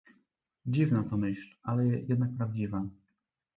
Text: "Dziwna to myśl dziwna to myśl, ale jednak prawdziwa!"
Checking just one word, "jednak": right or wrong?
right